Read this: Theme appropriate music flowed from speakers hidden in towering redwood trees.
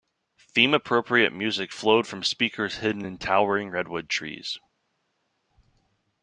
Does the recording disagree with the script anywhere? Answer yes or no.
no